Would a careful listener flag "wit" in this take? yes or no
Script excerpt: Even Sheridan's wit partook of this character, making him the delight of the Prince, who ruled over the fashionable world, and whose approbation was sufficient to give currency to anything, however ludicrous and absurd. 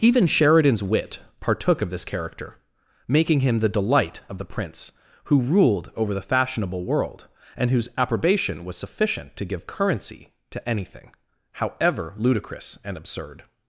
no